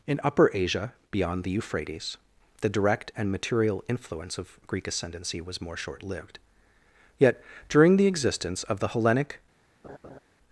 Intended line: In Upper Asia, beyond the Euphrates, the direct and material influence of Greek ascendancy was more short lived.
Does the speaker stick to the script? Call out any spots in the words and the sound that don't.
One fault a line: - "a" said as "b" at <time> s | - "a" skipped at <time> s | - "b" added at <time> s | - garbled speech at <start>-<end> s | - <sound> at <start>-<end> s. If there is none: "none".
- "Yet during the existence of the Hellenic" added at 7.2 s
- laugh at 9.8-10.2 s